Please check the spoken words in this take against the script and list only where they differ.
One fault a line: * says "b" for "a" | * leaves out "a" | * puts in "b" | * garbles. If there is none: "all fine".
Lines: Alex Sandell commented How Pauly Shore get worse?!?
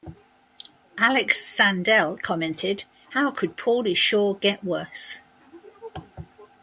* puts in "could"